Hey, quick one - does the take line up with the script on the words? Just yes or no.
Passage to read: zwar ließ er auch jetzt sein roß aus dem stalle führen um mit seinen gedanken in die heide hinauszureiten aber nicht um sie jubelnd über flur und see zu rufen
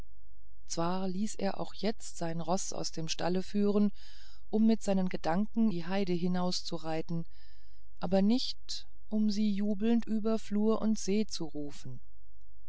no